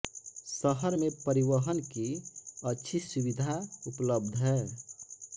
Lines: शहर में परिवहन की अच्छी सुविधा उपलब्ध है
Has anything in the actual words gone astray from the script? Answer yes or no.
no